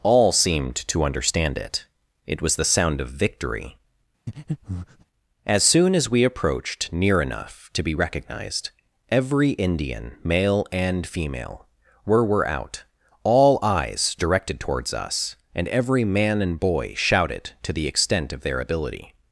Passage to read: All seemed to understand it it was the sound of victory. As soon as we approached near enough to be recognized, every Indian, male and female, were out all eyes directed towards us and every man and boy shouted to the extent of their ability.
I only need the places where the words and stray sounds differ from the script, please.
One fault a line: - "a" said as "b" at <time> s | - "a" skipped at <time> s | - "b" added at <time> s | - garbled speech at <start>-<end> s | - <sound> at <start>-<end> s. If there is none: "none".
- breath at 4.3-5.0 s
- "were" added at 12.2 s